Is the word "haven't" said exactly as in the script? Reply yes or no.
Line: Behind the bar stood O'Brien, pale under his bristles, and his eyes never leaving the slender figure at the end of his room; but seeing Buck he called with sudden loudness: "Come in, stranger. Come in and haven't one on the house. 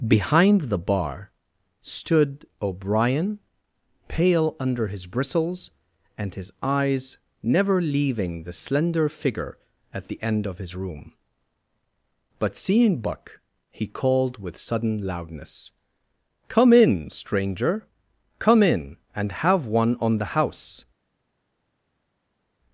no